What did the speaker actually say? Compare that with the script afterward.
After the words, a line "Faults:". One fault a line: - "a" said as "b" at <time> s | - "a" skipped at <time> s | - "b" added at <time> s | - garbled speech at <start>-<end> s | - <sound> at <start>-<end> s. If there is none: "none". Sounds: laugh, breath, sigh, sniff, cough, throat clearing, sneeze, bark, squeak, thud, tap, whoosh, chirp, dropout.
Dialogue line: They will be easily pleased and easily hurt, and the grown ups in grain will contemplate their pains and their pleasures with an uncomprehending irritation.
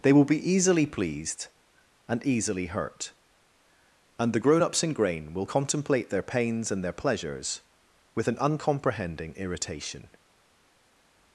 They will be easily pleased and easily hurt, and the grown ups in grain will contemplate their pains and their pleasures with an uncomprehending irritation.
Faults:
none